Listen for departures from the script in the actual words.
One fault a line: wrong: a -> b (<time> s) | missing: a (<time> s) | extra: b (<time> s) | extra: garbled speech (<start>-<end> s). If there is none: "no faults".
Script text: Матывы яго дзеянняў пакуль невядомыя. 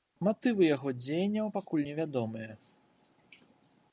no faults